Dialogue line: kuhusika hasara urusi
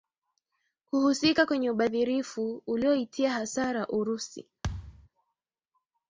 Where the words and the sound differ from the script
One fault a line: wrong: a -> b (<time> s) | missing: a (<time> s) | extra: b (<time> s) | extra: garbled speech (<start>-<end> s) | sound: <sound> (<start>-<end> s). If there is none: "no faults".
extra: kwenye ubadhirifu ulioitia (1.4 s)
sound: thud (4.6-5.1 s)